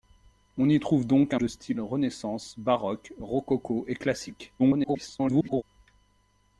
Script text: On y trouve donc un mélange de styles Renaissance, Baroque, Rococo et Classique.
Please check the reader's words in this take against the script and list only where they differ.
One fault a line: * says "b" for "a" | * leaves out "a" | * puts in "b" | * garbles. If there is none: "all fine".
* leaves out "mélange"
* garbles